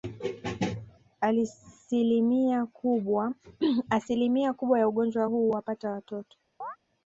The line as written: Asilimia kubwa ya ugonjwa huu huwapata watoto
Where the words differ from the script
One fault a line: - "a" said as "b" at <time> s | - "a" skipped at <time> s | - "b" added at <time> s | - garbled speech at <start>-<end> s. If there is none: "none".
none